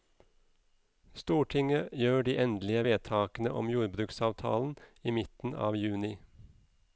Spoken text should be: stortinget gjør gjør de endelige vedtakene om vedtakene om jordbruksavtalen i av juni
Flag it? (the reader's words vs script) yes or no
yes